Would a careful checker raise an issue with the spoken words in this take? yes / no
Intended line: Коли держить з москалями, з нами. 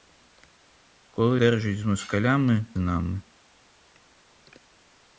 no